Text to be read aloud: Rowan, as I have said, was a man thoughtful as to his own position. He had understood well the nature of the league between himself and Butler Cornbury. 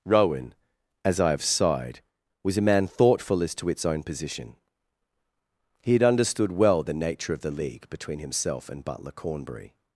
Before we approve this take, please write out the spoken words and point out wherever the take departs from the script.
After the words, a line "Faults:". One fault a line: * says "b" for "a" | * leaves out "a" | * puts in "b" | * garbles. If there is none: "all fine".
Rowan, as I have sighed, was a man thoughtful as to its own position. He had understood well the nature of the league between himself and Butler Cornbury.
Faults:
* says "sighed" for "said"
* says "its" for "his"